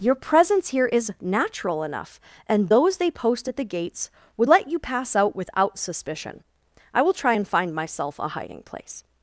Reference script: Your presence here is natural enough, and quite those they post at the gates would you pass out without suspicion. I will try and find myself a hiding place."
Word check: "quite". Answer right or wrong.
wrong